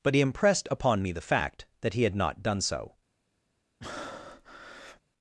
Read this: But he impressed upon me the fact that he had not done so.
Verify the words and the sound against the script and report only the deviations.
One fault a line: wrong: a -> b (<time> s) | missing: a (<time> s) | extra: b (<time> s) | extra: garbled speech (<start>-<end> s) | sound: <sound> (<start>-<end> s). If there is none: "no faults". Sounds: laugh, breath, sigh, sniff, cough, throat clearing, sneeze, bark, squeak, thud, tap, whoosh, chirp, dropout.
sound: breath (3.8-5.0 s)